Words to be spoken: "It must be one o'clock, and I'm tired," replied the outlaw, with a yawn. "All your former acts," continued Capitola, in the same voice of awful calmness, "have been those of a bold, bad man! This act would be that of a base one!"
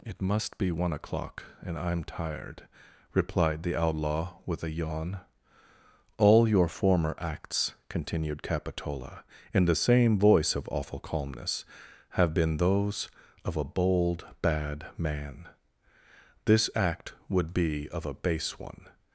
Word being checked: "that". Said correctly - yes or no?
no